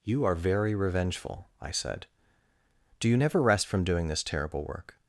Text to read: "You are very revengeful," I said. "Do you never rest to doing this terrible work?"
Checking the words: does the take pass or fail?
fail